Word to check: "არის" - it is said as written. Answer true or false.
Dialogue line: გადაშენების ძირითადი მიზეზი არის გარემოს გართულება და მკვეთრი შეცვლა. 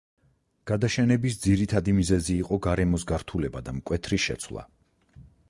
false